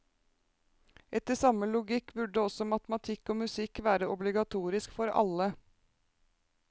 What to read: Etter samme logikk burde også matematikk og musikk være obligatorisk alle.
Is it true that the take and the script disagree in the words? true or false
true